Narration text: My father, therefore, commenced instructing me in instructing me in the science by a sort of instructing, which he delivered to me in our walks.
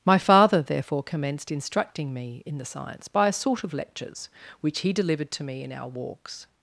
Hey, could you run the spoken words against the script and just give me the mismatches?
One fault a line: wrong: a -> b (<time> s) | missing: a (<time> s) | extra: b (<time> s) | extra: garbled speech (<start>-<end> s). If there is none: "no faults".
missing: instructing me in (2.6 s)
wrong: instructing -> lectures (3.7 s)